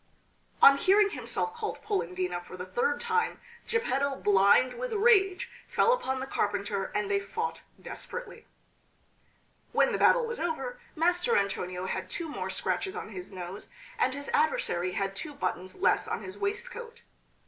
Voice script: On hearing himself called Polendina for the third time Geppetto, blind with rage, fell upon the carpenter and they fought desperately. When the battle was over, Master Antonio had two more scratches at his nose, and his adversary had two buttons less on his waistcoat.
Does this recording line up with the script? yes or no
no